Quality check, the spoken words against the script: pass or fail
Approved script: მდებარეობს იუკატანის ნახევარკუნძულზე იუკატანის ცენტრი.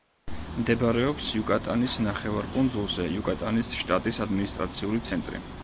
fail